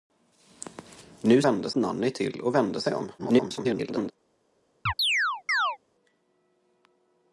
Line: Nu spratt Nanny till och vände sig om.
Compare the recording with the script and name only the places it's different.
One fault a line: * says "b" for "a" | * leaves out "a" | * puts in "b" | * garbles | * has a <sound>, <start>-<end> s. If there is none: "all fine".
* says "vände" for "spratt"
* garbles
* has a chirp, 4.9-5.8 s